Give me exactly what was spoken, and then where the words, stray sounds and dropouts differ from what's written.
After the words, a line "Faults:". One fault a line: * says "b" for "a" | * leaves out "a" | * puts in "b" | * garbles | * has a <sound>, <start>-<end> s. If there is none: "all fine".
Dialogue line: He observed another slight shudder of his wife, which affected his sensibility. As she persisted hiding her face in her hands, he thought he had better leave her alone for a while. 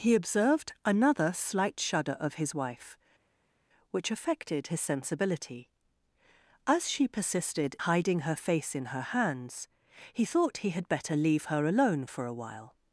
He observed another slight shudder of his wife, which affected his sensibility. As she persisted hiding her face in her hands, he thought he had better leave her alone for a while.
Faults:
all fine